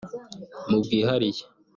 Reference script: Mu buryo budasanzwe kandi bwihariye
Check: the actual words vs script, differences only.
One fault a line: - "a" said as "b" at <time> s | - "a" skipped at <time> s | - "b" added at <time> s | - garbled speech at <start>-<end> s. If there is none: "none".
- "buryo budasanzwe kandi" skipped at 0.8 s